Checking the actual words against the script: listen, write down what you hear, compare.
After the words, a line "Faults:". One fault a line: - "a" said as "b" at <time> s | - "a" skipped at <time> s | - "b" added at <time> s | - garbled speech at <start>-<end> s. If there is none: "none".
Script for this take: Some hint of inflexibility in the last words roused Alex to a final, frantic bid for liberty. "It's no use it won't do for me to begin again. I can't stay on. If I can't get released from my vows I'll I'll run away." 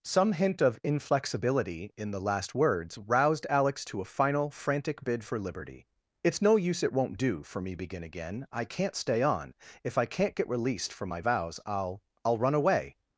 Some hint of inflexibility in the last words roused Alex to a final, frantic bid for liberty. "It's no use it won't do for me begin again. I can't stay on. If I can't get released from my vows I'll I'll run away."
Faults:
- "to" skipped at 7.7 s